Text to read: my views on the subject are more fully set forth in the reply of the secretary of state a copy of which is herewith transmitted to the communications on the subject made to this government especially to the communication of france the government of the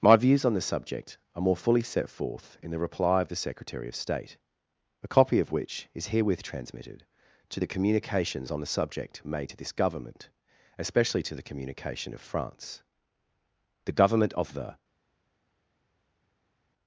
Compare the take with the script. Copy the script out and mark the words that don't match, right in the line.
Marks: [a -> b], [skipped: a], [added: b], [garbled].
my views on the subject are more fully set forth in the reply of the secretary of state a copy of which is herewith transmitted to the communications on the subject made to this government especially to the communication of france the government of the